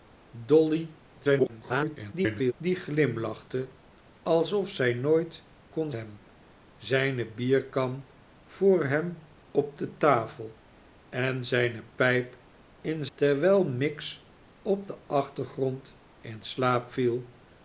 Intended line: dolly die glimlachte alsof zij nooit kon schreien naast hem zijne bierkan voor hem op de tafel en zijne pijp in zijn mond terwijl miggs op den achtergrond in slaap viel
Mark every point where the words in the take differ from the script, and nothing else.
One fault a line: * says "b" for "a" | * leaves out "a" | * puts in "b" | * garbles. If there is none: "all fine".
* garbles
* leaves out "schreien naast"
* leaves out "zijn mond"